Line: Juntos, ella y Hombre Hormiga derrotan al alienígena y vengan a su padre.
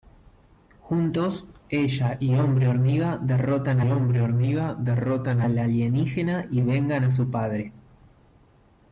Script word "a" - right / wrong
right